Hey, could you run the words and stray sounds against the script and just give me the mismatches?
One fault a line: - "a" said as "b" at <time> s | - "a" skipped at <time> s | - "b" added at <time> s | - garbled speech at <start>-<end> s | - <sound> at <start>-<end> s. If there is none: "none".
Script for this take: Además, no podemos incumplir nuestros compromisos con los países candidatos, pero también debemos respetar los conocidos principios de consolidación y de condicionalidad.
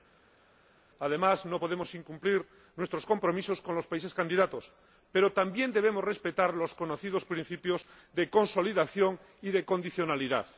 none